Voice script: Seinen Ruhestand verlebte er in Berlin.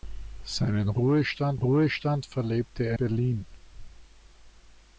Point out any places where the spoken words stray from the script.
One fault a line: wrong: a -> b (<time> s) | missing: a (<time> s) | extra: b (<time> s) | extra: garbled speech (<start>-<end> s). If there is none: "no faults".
extra: Ruhestand (1.6 s)
missing: in (3.0 s)